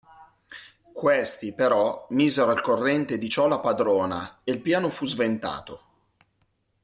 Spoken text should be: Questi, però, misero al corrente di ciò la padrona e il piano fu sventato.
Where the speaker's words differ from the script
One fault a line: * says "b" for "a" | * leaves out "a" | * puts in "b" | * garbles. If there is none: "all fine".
all fine